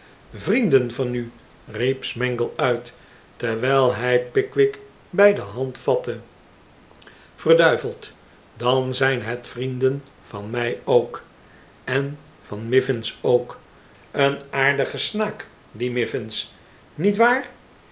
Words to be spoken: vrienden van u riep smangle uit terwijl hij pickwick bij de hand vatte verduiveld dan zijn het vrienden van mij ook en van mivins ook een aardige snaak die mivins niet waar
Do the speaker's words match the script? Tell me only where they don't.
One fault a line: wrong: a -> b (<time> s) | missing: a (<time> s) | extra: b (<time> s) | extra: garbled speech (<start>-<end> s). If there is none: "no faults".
no faults